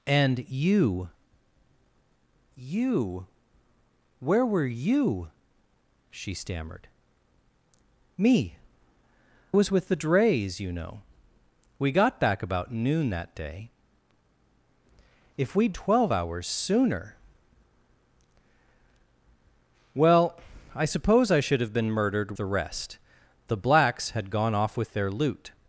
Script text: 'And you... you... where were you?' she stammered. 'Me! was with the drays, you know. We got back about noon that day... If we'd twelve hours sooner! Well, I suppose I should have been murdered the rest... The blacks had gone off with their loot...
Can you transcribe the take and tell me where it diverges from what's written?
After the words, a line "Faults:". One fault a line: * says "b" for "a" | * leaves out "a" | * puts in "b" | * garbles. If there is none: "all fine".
'And you... you... where were you?' she stammered. 'Me! was with the drays, you know. We got back about noon that day... If we'd twelve hours sooner! Well, I suppose I should have been murdered the rest... The blacks had gone off with their loot...
Faults:
all fine